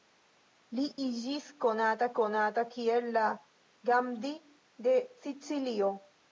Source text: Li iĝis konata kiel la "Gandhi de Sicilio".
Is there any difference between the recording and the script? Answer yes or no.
yes